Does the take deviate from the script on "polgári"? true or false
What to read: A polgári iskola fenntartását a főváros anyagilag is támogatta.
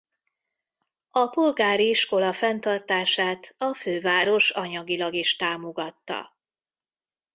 false